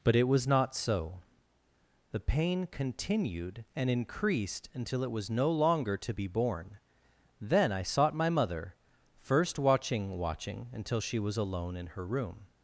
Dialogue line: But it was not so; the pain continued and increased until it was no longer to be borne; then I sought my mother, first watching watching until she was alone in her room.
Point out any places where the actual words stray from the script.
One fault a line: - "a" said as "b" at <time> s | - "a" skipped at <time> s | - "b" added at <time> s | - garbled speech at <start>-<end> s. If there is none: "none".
none